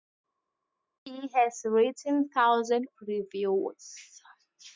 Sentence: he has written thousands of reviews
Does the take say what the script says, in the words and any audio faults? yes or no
no